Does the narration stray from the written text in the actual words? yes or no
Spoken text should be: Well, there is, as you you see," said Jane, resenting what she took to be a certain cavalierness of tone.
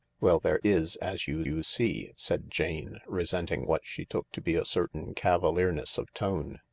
no